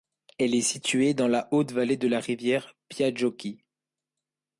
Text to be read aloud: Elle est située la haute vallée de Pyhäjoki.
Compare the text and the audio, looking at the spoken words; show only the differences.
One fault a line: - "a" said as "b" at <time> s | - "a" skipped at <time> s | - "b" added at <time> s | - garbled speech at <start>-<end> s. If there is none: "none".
- "dans" added at 1.1 s
- "la rivière" added at 2.1 s